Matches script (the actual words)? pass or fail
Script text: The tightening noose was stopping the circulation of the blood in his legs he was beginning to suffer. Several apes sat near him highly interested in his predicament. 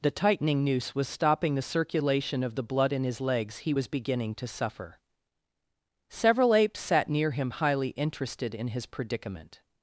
pass